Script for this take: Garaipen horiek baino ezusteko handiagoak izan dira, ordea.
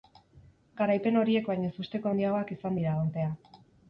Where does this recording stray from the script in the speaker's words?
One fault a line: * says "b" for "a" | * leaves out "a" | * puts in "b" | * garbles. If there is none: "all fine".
all fine